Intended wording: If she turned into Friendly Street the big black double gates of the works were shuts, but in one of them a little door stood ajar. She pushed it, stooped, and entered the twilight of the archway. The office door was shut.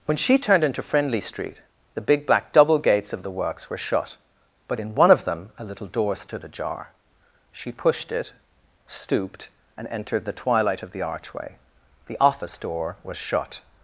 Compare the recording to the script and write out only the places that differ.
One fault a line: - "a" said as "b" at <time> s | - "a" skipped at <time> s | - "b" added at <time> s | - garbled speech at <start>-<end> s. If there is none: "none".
- "If" said as "When" at 0.1 s
- "shuts" said as "shut" at 3.8 s